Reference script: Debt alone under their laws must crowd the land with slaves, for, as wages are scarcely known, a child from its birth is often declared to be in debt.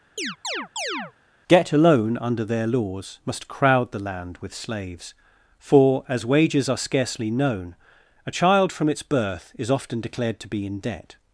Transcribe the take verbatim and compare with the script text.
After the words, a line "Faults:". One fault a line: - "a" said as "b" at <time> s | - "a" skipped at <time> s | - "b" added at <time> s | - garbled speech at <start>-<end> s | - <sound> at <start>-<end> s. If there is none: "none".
Get alone under their laws must crowd the land with slaves, for, as wages are scarcely known, a child from its birth is often declared to be in debt.
Faults:
- chirp at 0.2-1.1 s
- "Debt" said as "Get" at 1.5 s